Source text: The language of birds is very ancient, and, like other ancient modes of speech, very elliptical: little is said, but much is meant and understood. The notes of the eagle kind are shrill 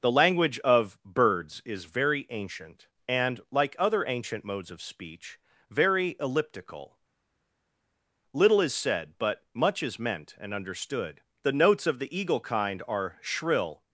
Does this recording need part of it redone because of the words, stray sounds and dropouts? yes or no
no